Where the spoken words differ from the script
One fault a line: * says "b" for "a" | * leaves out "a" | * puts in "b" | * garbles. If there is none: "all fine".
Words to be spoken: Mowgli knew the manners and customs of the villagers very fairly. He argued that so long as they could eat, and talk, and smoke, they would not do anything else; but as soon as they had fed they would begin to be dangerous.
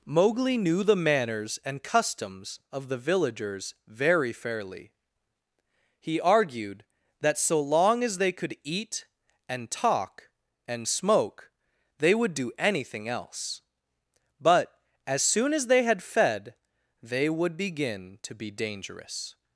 * leaves out "not"